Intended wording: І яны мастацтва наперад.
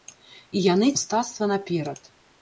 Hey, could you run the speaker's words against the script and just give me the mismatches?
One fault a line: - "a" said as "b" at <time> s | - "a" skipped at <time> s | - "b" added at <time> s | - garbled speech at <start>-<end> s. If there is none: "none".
none